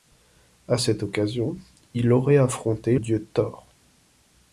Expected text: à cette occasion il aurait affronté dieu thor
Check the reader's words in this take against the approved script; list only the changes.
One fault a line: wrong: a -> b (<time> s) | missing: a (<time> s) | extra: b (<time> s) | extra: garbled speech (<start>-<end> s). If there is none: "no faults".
no faults